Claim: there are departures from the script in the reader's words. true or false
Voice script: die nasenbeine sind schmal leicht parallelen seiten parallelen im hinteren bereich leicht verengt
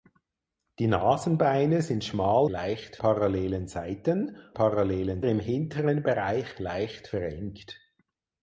false